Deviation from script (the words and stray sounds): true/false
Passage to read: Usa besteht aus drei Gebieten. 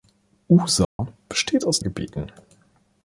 true